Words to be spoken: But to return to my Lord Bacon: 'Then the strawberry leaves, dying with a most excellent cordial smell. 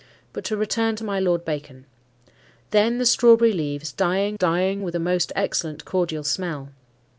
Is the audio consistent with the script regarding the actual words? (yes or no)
no